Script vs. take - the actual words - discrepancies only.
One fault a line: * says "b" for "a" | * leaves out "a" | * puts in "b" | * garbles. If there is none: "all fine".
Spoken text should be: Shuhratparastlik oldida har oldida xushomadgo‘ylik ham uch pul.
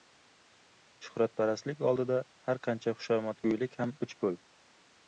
* says "qancha" for "oldida"